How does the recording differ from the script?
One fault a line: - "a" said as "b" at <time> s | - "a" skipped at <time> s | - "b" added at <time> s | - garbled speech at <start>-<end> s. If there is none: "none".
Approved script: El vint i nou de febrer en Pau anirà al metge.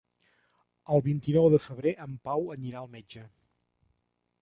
none